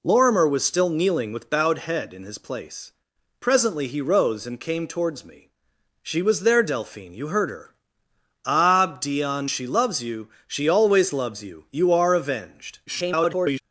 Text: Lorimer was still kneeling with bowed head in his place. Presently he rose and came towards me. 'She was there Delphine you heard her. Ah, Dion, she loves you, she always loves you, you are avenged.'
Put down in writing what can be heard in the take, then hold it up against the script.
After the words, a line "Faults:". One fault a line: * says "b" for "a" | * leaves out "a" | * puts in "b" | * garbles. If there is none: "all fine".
Lorimer was still kneeling with bowed head in his place. Presently he rose and came towards me. 'She was there Delphine you heard her. Ah, Dion, she loves you, she always loves you, you are avenged.' [garbled]
Faults:
* garbles